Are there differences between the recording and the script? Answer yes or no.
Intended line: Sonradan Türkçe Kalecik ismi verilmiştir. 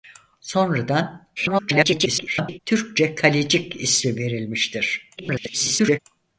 yes